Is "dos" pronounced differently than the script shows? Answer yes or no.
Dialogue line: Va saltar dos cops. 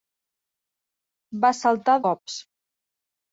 yes